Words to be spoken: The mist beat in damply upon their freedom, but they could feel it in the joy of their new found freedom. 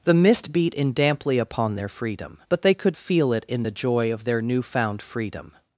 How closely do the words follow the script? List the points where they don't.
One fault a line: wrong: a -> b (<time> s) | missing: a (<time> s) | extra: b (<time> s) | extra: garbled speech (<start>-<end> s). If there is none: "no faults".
no faults